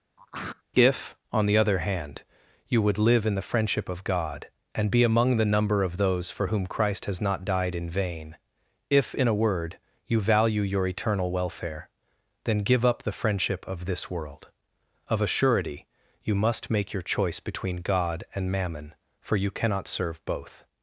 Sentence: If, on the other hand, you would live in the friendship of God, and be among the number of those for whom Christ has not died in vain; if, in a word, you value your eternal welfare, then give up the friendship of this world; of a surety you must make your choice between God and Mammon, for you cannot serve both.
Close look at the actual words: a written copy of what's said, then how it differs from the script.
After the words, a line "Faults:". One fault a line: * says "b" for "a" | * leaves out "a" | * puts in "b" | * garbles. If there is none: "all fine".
If, on the other hand, you would live in the friendship of God, and be among the number of those for whom Christ has not died in vain; if, in a word, you value your eternal welfare, then give up the friendship of this world; of a surety you must make your choice between God and Mammon, for you cannot serve both.
Faults:
all fine